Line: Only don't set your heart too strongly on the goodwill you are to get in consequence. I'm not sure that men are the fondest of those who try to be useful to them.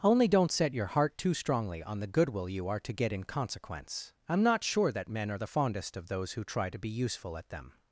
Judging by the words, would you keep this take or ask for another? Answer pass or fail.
fail